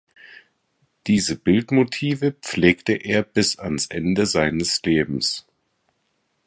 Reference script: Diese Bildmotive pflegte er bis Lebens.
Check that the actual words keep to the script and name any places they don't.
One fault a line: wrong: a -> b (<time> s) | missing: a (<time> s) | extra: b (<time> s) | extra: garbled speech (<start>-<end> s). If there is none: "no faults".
extra: ans Ende seines (3.6 s)